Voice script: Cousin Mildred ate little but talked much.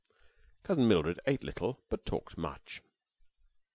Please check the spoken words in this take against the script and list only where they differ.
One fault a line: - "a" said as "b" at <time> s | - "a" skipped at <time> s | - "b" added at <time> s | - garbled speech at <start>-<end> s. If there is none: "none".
none